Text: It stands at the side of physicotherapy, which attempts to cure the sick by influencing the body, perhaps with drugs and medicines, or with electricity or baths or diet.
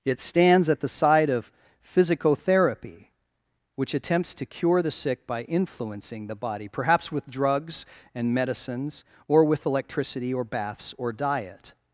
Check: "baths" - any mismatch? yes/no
no